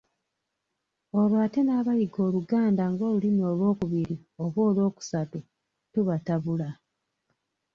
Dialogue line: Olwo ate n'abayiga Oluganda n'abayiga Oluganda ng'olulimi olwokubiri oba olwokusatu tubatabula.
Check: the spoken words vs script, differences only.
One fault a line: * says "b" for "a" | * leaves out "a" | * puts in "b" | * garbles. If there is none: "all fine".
* leaves out "n'abayiga Oluganda"